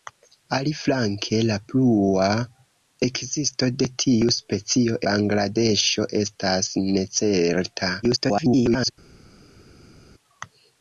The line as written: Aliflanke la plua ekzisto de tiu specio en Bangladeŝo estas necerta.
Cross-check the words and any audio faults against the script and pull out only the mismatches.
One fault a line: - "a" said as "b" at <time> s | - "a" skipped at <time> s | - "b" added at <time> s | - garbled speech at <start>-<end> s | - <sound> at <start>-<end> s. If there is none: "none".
- "en" skipped at 5.0 s
- garbled speech at 8.0-8.9 s